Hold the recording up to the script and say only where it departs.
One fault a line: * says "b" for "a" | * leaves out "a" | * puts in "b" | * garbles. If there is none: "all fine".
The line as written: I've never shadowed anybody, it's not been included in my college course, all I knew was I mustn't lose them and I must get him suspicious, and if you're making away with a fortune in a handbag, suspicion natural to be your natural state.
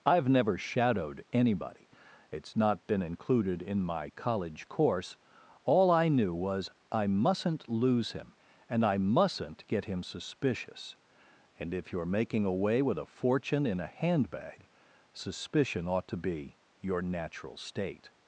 * says "him" for "them"
* says "mustn't" for "must"
* says "ought" for "natural"